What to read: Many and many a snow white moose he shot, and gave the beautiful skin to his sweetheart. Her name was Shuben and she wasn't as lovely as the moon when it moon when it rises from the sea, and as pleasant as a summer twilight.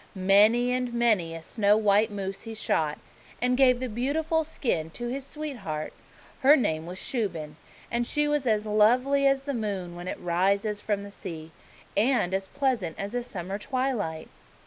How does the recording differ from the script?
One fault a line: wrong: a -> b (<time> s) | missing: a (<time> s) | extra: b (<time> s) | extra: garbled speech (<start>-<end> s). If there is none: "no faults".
wrong: wasn't -> was (8.3 s)
missing: moon when it (10.2 s)